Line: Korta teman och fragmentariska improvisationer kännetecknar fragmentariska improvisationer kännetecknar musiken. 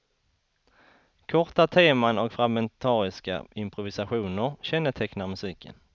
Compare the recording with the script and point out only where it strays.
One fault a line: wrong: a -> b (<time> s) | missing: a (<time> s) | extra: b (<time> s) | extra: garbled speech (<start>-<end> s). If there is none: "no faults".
missing: fragmentariska improvisationer kännetecknar (5.3 s)